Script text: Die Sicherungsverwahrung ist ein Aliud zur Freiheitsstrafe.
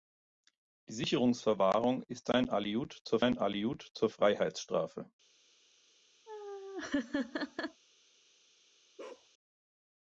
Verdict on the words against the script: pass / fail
fail